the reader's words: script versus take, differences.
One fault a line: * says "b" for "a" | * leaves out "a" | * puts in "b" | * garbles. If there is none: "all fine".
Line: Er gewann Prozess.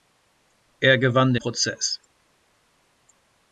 all fine